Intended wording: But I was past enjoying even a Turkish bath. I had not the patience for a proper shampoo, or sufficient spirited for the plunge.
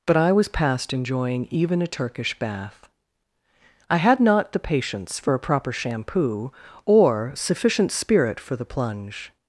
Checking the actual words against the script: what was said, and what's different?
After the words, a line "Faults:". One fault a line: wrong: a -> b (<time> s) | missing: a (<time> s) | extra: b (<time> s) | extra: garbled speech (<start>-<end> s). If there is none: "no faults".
But I was past enjoying even a Turkish bath. I had not the patience for a proper shampoo, or sufficient spirit for the plunge.
Faults:
wrong: spirited -> spirit (7.9 s)